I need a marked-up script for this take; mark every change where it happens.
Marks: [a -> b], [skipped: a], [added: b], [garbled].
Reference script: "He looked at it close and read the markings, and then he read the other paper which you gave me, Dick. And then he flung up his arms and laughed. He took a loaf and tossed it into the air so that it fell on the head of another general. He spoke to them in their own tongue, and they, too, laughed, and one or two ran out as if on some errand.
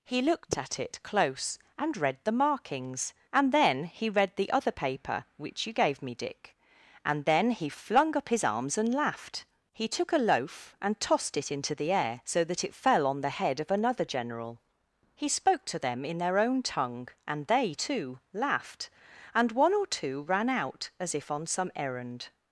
"He looked at it close and read the markings, and then he read the other paper which you gave me, Dick. And then he flung up his arms and laughed. He took a loaf and tossed it into the air so that it fell on the head of another general. He spoke to them in their own tongue, and they, too, laughed, and one or two ran out as if on some errand.